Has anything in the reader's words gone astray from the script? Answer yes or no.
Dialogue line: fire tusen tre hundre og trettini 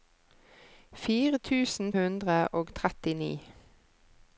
yes